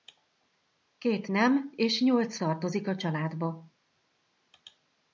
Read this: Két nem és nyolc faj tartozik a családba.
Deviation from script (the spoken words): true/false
true